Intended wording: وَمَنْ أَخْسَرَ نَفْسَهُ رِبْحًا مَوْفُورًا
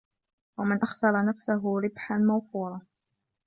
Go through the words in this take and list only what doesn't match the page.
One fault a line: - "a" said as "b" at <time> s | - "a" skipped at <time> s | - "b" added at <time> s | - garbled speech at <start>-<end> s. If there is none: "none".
none